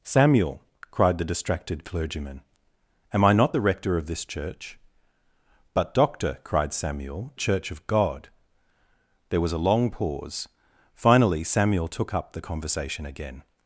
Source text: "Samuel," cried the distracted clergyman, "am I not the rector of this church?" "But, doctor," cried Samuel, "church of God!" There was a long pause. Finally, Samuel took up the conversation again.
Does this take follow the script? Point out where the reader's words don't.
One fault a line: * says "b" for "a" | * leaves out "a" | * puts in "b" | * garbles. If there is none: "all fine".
all fine